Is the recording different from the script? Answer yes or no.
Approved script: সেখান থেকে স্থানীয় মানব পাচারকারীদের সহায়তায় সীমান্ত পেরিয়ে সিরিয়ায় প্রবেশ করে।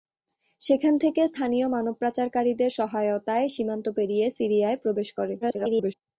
yes